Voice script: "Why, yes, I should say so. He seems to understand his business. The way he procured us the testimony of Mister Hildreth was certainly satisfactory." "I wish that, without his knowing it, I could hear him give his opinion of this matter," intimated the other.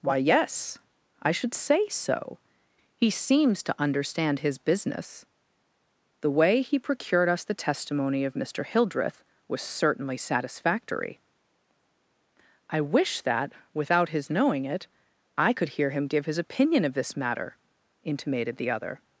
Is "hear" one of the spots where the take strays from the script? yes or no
no